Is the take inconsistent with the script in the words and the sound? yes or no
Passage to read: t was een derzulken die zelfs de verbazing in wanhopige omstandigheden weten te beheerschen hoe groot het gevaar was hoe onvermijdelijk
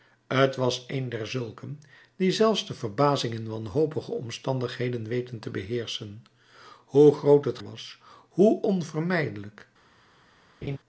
yes